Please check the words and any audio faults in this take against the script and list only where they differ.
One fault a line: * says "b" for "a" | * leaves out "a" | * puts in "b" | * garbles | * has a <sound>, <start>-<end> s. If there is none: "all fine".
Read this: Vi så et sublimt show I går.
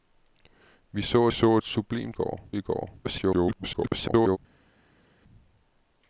* puts in "så"
* says "går" for "show"
* garbles